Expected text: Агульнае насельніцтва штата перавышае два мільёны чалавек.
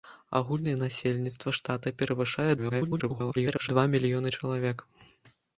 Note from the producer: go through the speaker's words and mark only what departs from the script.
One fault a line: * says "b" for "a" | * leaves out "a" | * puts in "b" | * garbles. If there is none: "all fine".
* garbles